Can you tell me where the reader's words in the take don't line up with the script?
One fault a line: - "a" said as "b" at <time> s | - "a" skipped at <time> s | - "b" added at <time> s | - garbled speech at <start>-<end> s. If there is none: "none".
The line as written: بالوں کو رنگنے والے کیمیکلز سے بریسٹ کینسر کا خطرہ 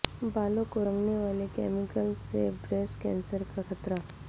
none